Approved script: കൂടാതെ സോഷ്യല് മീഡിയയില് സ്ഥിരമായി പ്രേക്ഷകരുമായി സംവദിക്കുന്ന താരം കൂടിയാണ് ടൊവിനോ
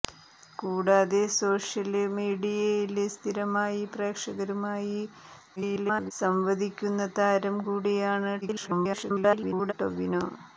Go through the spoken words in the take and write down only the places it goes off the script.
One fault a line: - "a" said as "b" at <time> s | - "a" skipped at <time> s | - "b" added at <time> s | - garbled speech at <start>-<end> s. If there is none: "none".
- garbled speech at 5.6-6.1 s
- garbled speech at 8.4-9.7 s